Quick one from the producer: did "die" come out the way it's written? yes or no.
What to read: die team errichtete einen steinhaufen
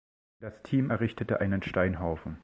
no